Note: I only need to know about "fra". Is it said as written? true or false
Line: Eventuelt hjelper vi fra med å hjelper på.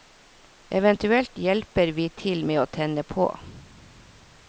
false